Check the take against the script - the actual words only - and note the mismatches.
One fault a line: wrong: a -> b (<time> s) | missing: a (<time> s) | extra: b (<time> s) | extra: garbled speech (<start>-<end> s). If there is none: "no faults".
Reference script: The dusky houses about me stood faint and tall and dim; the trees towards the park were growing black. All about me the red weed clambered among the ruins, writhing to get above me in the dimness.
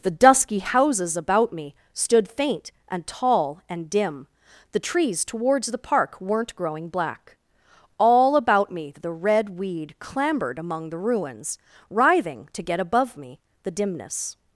wrong: were -> weren't (6.2 s)
missing: in (13.4 s)